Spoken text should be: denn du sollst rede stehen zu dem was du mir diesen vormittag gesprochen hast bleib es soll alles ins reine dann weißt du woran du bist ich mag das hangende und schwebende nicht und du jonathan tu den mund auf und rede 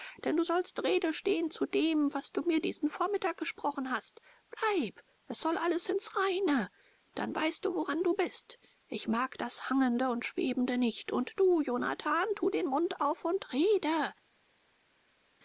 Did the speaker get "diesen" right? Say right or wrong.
right